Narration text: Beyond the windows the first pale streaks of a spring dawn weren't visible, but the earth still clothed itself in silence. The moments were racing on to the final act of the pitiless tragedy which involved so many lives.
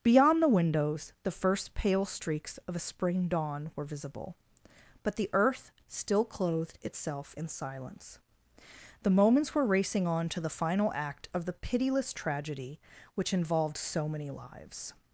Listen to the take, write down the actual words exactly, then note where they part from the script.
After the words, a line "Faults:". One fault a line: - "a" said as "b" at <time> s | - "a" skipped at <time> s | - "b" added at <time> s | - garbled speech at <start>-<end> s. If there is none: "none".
Beyond the windows the first pale streaks of a spring dawn were visible, but the earth still clothed itself in silence. The moments were racing on to the final act of the pitiless tragedy which involved so many lives.
Faults:
- "weren't" said as "were" at 3.8 s